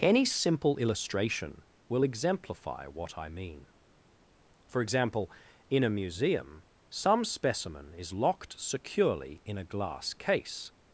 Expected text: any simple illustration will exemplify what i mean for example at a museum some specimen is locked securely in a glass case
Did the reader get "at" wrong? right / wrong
wrong